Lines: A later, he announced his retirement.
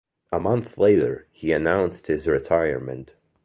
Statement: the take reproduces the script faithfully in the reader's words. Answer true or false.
false